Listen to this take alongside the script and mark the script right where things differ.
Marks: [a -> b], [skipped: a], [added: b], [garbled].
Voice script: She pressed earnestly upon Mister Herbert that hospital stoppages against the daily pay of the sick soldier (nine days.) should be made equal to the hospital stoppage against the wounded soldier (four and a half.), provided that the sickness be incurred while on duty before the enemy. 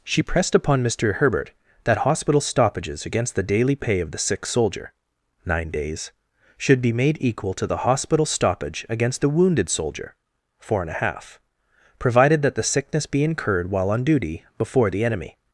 She pressed [skipped: earnestly] upon Mister Herbert that hospital stoppages against the daily pay of the sick soldier (nine days.) should be made equal to the hospital stoppage against the wounded soldier (four and a half.), provided that the sickness be incurred while on duty before the enemy.